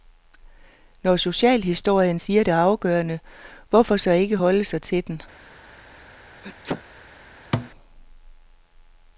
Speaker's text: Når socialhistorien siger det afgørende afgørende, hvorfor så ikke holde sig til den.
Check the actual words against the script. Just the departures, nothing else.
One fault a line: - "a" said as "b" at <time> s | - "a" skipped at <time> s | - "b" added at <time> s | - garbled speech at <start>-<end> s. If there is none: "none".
- "afgørende" skipped at 3.2 s